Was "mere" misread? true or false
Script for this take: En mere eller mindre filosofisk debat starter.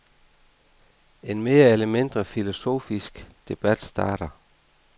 false